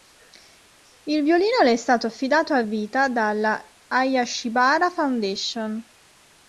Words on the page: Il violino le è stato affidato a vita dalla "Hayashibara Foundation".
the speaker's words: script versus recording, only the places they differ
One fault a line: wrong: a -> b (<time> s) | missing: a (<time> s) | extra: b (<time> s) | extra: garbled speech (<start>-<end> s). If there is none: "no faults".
no faults